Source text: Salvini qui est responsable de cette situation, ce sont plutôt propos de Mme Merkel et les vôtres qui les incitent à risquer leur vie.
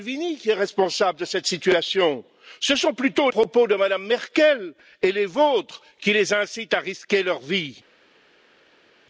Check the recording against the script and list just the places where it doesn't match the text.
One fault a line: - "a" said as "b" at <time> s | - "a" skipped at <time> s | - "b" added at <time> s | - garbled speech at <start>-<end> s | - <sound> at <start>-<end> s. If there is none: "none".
none